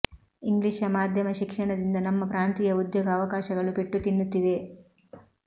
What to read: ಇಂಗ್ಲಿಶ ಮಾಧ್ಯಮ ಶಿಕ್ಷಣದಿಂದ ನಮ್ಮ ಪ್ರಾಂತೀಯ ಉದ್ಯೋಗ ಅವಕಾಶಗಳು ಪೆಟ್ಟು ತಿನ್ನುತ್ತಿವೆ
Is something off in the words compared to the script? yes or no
no